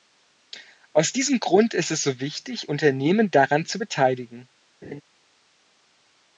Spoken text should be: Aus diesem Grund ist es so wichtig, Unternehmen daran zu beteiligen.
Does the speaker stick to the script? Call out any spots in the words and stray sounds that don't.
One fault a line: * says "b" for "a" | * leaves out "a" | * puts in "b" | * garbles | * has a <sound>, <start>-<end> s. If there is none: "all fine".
* has a laugh, 4.8-5.0 s